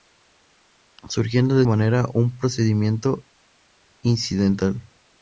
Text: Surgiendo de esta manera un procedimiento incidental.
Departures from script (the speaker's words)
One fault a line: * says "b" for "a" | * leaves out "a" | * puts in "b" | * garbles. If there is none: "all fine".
* leaves out "esta"